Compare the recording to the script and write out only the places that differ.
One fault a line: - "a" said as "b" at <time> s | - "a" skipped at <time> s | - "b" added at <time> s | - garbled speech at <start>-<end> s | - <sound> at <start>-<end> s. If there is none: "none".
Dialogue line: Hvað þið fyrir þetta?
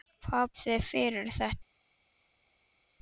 none